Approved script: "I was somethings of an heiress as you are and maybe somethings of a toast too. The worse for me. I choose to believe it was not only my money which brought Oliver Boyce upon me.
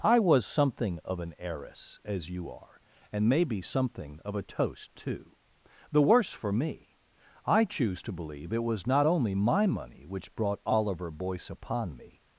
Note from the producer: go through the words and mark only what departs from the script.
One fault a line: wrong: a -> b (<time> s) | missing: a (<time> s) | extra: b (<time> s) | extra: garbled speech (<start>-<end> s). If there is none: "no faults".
wrong: somethings -> something (0.5 s)
wrong: somethings -> something (3.6 s)